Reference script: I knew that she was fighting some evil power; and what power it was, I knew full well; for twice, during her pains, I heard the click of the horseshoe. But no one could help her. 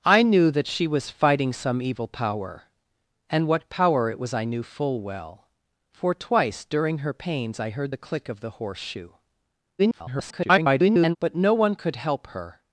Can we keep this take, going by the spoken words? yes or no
no